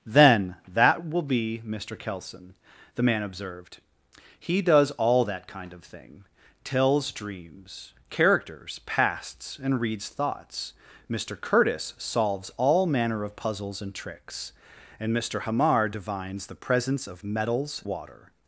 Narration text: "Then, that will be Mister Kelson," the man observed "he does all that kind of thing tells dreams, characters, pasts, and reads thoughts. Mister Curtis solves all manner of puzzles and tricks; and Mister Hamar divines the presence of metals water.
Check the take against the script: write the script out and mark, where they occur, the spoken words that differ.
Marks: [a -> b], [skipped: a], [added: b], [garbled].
"Then, that will be Mister Kelson," the man observed "he does all that kind of thing tells dreams, characters, pasts, and reads thoughts. Mister Curtis solves all manner of puzzles and tricks; and Mister Hamar divines the presence of metals water.